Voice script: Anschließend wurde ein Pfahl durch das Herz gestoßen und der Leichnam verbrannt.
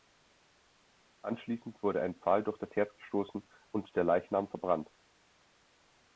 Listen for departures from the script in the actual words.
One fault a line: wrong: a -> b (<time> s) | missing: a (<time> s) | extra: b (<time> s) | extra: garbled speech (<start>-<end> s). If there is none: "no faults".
no faults